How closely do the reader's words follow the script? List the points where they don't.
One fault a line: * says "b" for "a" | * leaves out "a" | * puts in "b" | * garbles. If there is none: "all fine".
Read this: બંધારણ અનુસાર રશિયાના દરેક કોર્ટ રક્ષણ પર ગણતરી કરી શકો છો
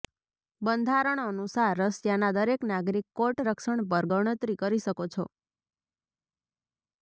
* puts in "નાગરિક"